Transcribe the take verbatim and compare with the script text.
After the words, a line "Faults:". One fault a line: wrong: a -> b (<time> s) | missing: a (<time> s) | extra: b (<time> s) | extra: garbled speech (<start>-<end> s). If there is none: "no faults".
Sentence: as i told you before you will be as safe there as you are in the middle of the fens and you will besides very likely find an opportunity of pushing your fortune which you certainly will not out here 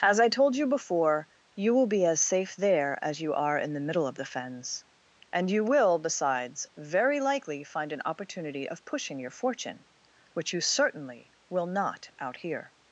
as i told you before you will be as safe there as you are in the middle of the fens and you will besides very likely find an opportunity of pushing your fortune which you certainly will not out here
Faults:
no faults